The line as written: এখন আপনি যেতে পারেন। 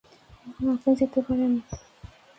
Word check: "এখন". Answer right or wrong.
right